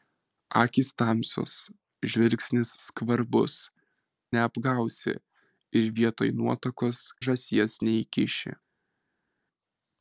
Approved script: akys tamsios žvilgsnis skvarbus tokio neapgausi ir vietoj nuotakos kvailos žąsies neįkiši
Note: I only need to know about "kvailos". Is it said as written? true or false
false